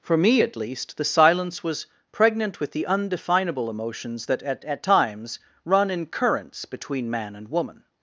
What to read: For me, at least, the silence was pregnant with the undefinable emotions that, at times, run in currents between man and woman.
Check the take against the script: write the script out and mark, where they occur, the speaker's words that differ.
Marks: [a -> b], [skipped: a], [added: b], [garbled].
For me, at least, the silence was pregnant with the undefinable emotions that, at [added: at] times, run in currents between man and woman.